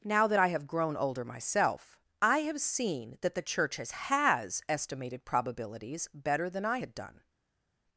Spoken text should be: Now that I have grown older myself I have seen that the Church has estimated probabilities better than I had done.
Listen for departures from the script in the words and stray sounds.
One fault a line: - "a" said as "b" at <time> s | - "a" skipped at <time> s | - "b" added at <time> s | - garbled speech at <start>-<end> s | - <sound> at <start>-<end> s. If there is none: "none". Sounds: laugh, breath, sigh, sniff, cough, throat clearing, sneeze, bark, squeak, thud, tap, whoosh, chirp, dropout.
- "has" added at 3.9 s